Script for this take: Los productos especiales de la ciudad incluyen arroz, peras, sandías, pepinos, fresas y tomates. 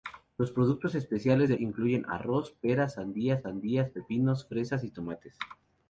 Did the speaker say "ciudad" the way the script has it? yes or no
no